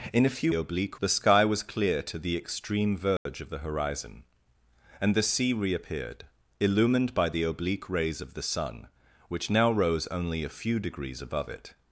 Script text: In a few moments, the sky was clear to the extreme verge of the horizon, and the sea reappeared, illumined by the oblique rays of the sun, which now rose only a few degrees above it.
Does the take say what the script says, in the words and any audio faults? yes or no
no